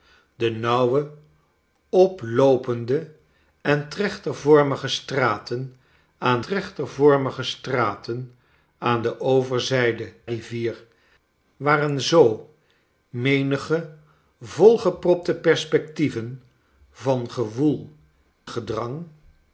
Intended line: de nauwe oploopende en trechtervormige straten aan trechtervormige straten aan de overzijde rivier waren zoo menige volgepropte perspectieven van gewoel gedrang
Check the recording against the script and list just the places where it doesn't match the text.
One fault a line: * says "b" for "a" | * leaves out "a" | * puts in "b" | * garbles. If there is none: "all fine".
all fine